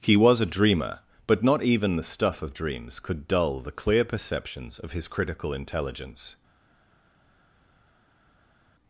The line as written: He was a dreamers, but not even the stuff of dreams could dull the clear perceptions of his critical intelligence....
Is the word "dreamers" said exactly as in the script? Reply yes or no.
no